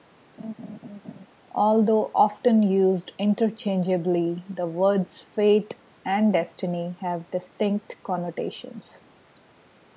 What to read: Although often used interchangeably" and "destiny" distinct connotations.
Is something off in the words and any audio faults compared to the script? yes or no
yes